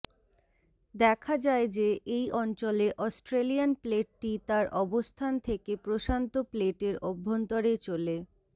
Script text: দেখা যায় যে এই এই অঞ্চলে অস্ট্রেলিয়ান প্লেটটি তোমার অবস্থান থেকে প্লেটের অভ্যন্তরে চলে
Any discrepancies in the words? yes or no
yes